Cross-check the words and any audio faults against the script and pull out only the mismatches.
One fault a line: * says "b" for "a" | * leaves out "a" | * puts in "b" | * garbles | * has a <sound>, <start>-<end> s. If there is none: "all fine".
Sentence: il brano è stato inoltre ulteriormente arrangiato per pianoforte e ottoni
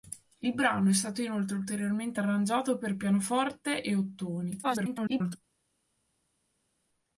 * garbles